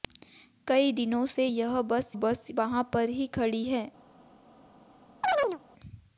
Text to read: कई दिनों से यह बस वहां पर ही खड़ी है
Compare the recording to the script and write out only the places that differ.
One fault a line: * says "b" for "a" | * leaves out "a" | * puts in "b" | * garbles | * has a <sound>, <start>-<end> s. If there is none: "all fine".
* puts in "बस"
* has a chirp, 5.2-5.6 s